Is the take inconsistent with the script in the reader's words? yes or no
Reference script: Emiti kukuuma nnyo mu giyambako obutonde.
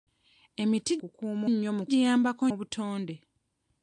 no